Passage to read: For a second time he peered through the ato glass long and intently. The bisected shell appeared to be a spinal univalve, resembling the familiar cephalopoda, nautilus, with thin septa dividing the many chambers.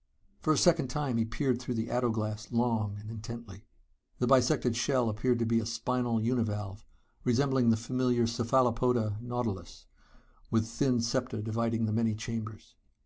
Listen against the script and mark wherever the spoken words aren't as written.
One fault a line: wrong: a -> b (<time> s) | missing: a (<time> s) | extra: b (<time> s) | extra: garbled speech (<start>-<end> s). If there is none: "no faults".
no faults